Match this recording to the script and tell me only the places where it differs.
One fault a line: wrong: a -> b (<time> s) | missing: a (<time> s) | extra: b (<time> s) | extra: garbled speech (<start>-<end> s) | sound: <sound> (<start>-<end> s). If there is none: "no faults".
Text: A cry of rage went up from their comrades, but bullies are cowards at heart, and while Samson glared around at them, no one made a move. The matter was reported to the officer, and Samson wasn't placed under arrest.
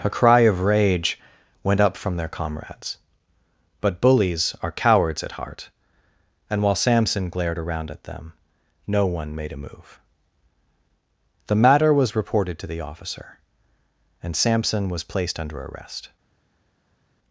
wrong: wasn't -> was (14.9 s)